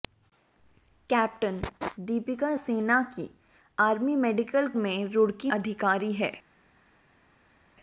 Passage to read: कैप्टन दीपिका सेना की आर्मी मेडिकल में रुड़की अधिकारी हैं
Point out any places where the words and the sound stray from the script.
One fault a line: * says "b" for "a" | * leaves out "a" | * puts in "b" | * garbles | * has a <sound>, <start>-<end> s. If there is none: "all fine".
all fine